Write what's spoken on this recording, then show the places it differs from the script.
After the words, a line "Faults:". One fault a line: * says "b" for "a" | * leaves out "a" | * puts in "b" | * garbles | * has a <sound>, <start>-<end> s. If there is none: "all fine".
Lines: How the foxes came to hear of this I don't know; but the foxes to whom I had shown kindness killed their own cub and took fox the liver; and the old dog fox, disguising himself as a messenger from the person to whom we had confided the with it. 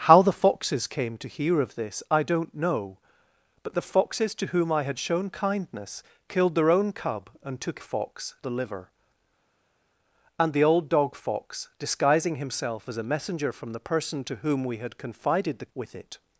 How the foxes came to hear of this I don't know; but the foxes to whom I had shown kindness killed their own cub and took fox the liver; and the old dog fox, disguising himself as a messenger from the person to whom we had confided the with it.
Faults:
all fine